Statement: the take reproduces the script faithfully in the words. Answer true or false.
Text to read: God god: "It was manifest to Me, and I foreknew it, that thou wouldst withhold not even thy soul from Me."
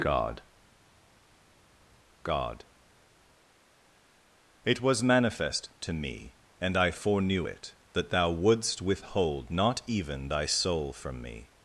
true